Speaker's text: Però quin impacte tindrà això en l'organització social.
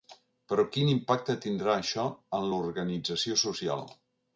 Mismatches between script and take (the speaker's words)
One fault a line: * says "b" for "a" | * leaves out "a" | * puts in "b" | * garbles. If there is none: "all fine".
all fine